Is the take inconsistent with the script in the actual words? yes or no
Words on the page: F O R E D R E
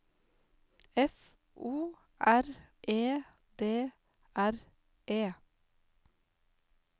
no